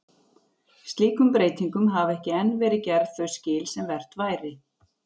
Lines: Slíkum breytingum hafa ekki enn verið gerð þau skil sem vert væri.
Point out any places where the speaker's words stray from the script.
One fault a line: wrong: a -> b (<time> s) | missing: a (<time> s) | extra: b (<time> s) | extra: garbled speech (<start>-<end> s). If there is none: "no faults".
no faults